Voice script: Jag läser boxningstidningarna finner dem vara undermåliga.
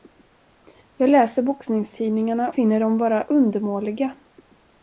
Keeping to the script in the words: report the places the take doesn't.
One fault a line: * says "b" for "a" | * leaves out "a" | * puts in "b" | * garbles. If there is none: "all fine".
all fine